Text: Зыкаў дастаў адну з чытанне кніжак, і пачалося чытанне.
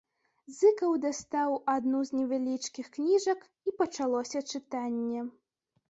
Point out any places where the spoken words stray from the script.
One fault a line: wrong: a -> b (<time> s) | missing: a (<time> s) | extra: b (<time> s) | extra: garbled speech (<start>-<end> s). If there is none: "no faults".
wrong: чытанне -> невялічкіх (2.2 s)